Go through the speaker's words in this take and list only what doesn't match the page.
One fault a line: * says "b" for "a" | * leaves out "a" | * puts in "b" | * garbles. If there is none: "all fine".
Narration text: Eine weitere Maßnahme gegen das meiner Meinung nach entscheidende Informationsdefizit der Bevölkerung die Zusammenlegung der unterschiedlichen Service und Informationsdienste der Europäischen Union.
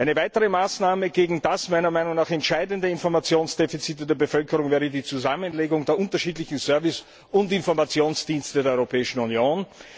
* puts in "wäre"